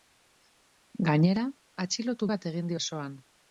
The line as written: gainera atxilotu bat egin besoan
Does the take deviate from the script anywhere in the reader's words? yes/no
no